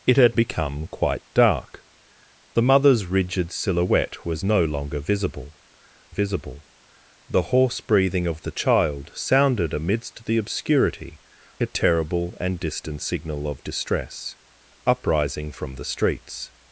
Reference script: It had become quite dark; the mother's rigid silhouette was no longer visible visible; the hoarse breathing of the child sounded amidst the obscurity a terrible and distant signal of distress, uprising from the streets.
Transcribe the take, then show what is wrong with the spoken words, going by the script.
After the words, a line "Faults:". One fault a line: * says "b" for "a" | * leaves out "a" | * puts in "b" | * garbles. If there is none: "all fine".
It had become quite dark; the mother's rigid silhouette was no longer visible visible; the hoarse breathing of the child sounded amidst the obscurity a terrible and distant signal of distress, uprising from the streets.
Faults:
all fine